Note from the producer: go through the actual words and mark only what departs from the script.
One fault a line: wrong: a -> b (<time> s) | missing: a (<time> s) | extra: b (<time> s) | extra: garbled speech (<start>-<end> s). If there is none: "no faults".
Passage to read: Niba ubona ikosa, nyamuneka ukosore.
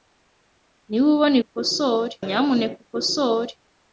wrong: ikosa -> ukosore (1.5 s)